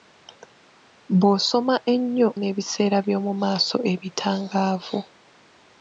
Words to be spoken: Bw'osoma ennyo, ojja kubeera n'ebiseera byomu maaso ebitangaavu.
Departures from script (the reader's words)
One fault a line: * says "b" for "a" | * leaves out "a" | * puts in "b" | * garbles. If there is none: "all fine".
* leaves out "ojja kubeera"